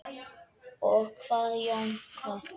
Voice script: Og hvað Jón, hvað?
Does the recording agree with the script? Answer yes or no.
yes